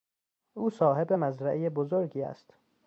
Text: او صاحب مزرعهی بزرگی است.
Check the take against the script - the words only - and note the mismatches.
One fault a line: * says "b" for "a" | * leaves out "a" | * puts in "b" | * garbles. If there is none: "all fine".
all fine